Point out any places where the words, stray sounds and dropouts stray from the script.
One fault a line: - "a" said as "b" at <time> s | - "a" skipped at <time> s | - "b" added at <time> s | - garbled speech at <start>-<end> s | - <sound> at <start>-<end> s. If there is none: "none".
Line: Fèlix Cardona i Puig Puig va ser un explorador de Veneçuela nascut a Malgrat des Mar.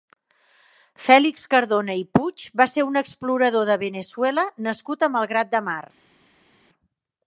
- "Puig" skipped at 2.4 s
- "des" said as "de" at 5.6 s